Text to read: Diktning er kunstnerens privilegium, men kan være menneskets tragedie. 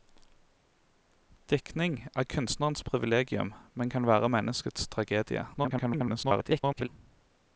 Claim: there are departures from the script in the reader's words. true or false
true